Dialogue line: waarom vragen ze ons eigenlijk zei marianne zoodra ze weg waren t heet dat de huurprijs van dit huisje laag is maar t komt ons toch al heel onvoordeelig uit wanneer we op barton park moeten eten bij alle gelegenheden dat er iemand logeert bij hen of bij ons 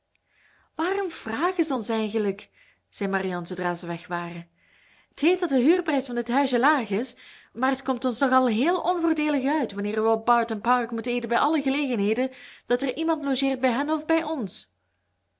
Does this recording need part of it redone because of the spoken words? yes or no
no